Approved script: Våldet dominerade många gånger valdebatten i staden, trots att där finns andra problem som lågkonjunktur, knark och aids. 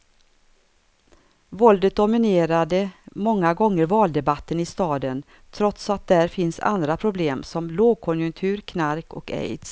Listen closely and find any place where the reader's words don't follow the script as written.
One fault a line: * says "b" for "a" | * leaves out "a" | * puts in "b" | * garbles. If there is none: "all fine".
all fine